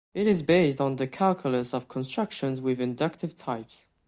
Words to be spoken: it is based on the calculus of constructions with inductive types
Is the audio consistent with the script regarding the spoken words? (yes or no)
yes